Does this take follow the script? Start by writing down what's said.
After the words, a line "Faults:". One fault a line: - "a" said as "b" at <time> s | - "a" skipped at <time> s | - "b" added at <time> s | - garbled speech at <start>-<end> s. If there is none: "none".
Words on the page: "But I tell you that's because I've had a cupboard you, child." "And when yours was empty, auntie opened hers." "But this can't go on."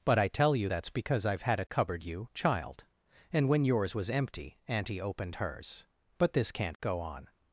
"But I tell you that's because I've had a cupboard you, child." "And when yours was empty, auntie opened hers." "But this can't go on."
Faults:
none